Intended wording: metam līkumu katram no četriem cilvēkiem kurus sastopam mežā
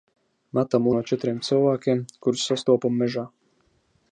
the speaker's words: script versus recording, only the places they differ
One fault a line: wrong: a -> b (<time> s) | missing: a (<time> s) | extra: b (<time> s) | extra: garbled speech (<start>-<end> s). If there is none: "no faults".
missing: līkumu katram (0.9 s)